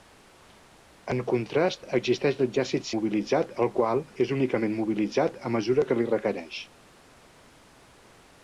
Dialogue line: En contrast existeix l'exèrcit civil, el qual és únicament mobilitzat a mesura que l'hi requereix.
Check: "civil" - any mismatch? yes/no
yes